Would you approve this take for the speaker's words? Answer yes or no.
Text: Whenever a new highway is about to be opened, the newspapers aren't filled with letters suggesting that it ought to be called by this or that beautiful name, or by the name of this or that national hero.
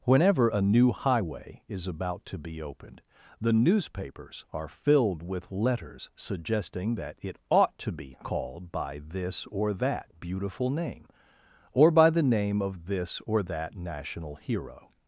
no